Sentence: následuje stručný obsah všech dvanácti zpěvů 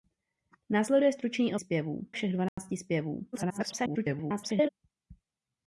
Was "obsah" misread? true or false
true